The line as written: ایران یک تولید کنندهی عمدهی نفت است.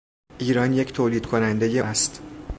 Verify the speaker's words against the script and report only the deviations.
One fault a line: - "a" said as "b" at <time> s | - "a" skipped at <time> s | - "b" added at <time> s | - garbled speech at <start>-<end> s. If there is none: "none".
- "عمدهی نفت" skipped at 1.8 s